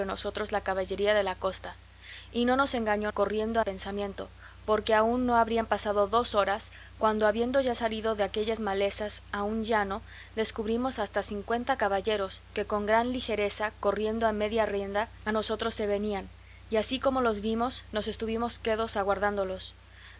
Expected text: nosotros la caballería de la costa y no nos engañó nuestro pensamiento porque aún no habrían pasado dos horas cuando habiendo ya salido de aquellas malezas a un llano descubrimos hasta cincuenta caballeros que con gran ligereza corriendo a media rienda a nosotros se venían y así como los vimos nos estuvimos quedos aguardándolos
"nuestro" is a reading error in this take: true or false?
true